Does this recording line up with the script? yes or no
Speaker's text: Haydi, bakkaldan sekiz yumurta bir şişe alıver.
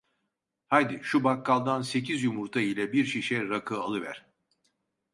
no